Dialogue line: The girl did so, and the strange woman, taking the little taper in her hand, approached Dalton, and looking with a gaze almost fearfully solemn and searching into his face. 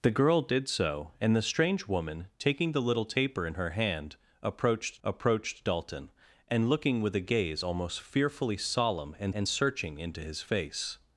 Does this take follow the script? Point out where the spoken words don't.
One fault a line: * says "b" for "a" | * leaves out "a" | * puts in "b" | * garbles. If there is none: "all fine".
* puts in "approached"
* puts in "and"